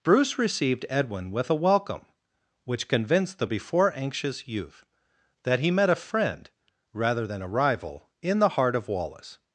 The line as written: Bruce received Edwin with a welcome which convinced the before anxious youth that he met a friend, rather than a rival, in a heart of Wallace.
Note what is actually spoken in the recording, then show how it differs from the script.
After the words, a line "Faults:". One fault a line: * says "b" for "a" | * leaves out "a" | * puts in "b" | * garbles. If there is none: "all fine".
Bruce received Edwin with a welcome which convinced the before anxious youth that he met a friend, rather than a rival, in the heart of Wallace.
Faults:
* says "the" for "a"